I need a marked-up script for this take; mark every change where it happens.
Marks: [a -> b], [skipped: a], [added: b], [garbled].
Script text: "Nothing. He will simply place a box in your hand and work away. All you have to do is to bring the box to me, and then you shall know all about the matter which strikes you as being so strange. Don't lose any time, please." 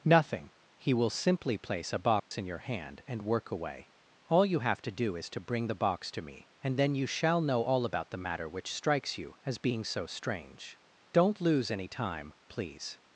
"Nothing. He will simply place a box in your hand and work away. All you have to do is to bring the box to me, and then you shall know all about the matter which strikes you as being so strange. Don't lose any time, please."